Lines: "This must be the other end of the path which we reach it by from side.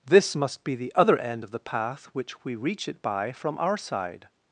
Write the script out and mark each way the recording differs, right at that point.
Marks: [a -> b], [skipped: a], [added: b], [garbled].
"This must be the other end of the path which we reach it by from [added: our] side.